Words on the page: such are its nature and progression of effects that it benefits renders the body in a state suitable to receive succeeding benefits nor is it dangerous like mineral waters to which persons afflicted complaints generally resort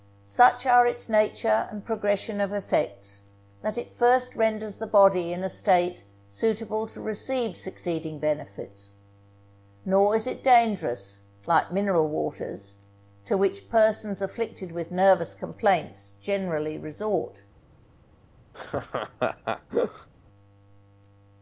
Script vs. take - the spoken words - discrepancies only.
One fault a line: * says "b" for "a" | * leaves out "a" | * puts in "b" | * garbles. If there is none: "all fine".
* says "first" for "benefits"
* puts in "with nervous"